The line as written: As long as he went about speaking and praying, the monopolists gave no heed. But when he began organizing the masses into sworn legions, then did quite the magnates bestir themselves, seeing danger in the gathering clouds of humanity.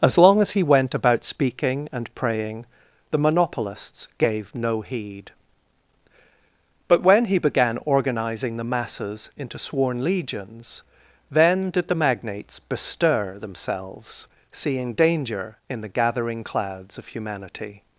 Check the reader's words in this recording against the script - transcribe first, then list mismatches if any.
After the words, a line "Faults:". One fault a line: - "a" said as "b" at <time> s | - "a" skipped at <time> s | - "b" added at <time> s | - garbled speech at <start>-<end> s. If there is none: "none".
As long as he went about speaking and praying, the monopolists gave no heed. But when he began organizing the masses into sworn legions, then did the magnates bestir themselves, seeing danger in the gathering clouds of humanity.
Faults:
- "quite" skipped at 11.9 s